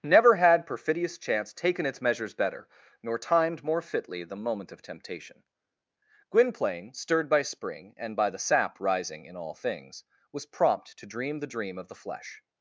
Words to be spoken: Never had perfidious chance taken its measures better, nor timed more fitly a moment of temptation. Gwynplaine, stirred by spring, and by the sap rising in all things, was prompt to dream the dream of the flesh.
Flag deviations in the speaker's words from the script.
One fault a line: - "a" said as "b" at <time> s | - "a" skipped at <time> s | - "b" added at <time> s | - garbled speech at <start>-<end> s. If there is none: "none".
- "a" said as "the" at 4.2 s